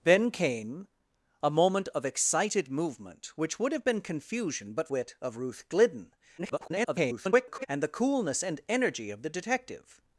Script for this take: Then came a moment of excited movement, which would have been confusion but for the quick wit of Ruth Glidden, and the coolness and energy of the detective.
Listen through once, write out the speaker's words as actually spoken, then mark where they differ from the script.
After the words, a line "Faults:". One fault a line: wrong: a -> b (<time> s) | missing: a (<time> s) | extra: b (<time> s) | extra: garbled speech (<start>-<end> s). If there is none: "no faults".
Then came a moment of excited movement, which would have been confusion but wit of Ruth Glidden, [garbled] and the coolness and energy of the detective.
Faults:
missing: for the quick (4.9 s)
extra: garbled speech (6.4-7.7 s)